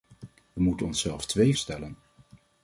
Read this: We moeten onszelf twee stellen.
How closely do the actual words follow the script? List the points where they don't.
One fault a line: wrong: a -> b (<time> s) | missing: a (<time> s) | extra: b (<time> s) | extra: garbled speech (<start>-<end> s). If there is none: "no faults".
no faults